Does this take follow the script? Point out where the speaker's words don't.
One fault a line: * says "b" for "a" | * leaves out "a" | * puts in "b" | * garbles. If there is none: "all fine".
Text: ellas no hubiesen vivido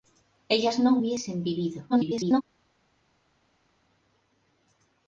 * garbles